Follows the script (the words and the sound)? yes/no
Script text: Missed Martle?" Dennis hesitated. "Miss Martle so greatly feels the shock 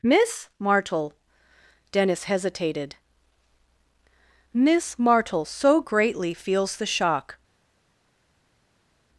no